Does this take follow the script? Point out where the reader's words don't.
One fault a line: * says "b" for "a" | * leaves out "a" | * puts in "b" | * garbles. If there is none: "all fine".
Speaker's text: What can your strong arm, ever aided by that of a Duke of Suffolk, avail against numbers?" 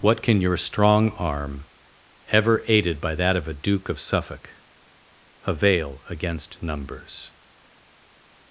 all fine